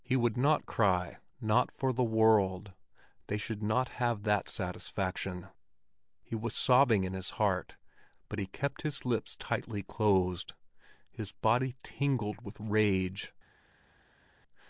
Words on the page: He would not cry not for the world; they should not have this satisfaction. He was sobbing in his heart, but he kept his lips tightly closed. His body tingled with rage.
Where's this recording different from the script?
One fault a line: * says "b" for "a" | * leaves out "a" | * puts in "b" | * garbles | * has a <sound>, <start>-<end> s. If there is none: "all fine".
* says "that" for "this"